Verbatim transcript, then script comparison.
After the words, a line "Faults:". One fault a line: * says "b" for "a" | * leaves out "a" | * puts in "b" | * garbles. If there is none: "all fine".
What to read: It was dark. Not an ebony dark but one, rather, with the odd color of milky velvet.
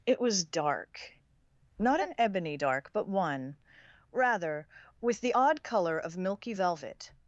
It was dark. Not an ebony dark but one, rather, with the odd color of milky velvet.
Faults:
all fine